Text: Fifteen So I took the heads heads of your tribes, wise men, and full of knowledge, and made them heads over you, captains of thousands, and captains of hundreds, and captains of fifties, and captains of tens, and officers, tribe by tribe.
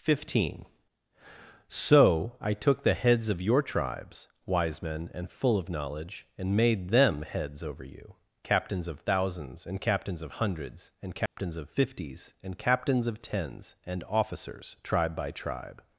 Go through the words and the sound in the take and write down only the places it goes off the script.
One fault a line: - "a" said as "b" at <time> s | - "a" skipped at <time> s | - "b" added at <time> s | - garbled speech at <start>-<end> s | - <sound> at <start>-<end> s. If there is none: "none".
- "heads" skipped at 3.3 s
- dropout at 11.3-11.4 s